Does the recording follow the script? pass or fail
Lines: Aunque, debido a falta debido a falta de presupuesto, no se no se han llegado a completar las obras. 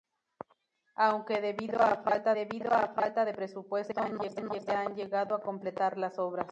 pass